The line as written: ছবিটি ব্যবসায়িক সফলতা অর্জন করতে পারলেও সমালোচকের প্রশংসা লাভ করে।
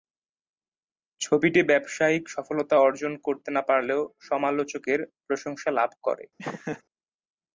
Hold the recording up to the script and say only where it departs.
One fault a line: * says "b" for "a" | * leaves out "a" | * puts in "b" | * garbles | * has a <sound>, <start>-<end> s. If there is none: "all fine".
* puts in "না"
* has a laugh, 6.4-6.8 s